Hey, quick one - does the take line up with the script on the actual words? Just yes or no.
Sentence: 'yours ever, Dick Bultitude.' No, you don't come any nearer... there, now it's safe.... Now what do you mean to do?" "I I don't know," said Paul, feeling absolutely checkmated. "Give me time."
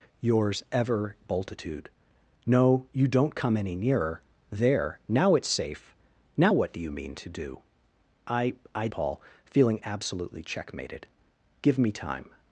no